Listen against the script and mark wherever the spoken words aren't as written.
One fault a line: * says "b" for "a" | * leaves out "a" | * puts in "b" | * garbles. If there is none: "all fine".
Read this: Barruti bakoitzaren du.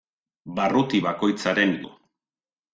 all fine